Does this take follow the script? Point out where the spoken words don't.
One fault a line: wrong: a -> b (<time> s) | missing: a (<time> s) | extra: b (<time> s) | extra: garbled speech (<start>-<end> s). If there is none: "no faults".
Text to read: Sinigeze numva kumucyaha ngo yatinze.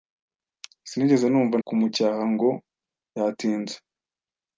no faults